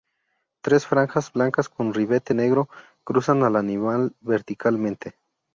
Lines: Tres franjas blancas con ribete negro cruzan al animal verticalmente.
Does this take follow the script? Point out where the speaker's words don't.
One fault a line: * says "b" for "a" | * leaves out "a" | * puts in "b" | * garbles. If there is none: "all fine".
all fine